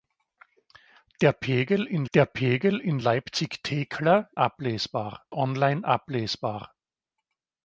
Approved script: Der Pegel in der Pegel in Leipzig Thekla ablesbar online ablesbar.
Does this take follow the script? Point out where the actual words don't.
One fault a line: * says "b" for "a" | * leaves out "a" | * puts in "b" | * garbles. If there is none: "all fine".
all fine